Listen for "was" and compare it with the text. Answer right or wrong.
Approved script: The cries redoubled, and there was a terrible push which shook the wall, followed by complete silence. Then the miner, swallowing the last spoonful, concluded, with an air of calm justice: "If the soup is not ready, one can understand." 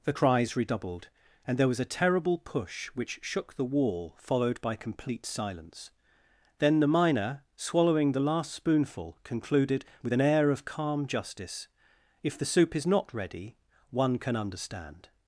right